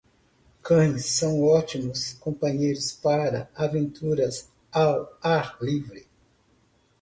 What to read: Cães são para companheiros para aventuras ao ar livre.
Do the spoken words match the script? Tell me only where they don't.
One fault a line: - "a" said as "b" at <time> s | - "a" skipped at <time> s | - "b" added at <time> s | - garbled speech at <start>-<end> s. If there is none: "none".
- "para" said as "ótimos" at 1.4 s